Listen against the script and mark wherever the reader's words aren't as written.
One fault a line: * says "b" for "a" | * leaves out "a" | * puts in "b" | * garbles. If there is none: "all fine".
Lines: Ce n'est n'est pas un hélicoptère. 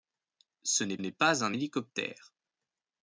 all fine